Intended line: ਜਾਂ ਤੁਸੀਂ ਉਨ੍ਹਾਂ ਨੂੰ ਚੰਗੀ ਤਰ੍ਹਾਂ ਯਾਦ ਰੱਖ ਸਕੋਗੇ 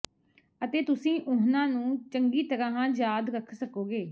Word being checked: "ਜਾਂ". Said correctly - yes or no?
no